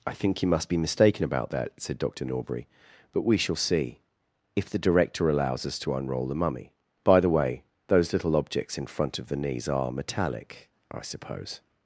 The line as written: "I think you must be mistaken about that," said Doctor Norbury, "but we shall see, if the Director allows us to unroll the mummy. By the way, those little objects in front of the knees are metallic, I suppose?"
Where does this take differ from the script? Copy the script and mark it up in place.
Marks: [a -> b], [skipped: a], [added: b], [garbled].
"I think you must be mistaken about that," said Doctor Norbury, "but we shall see, if the Director allows us to unroll the mummy. By the way, those little objects in front of the knees are metallic, I suppose?"